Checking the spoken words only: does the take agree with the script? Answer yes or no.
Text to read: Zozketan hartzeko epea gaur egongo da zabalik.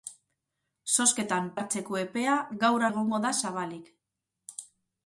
yes